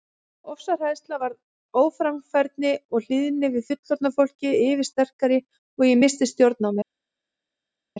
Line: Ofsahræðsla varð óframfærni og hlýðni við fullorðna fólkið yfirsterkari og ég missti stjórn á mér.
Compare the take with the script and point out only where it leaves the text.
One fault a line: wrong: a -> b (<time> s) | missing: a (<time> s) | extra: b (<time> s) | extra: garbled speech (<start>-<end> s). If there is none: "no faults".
no faults